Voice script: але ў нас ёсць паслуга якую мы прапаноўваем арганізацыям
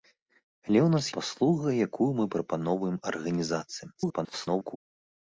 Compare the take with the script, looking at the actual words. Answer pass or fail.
fail